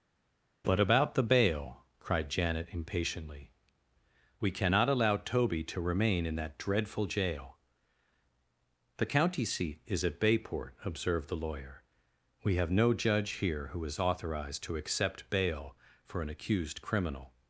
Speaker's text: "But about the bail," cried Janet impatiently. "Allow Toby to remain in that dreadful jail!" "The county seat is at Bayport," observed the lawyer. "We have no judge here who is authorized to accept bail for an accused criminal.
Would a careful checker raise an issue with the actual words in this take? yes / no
yes